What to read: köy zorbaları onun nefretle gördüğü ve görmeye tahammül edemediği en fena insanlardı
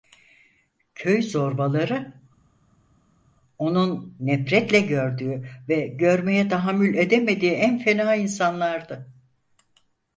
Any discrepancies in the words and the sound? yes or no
no